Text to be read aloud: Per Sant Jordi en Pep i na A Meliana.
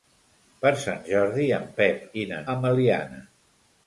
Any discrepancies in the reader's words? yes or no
no